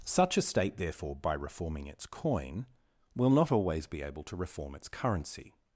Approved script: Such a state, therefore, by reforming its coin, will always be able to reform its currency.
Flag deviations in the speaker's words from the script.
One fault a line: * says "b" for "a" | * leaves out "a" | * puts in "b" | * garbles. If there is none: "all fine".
* puts in "not"